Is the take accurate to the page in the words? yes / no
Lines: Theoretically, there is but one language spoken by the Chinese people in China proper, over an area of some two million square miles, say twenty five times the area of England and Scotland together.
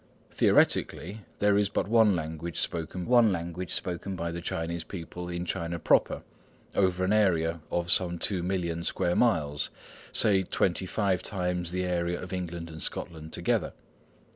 no